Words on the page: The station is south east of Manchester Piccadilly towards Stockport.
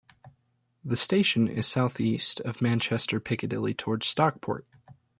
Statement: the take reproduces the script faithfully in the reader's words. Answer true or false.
true